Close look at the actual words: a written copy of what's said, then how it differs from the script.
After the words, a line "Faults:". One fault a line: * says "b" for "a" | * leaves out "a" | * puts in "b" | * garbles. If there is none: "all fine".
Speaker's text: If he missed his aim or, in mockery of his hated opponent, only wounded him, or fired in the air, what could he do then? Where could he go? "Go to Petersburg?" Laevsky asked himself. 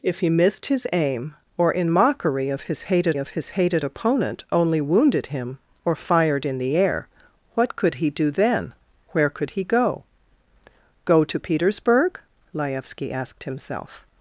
If he missed his aim or, in mockery of his hated of his hated opponent, only wounded him, or fired in the air, what could he do then? Where could he go? "Go to Petersburg?" Laevsky asked himself.
Faults:
* puts in "of his hated"